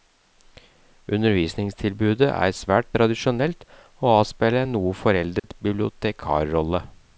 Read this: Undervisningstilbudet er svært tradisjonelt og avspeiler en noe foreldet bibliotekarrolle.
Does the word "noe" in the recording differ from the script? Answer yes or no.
no